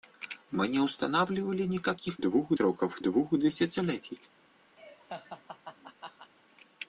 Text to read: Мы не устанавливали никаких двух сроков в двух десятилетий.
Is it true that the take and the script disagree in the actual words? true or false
false